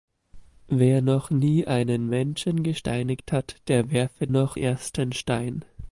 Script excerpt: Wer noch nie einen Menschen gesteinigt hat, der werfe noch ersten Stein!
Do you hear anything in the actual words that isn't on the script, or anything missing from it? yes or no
no